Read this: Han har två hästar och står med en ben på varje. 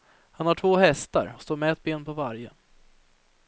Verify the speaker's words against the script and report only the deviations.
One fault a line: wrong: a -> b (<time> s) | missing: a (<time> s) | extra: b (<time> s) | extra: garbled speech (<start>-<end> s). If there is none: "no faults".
wrong: en -> ett (1.7 s)